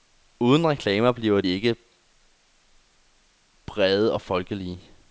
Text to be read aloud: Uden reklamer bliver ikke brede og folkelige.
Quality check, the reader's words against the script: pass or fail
pass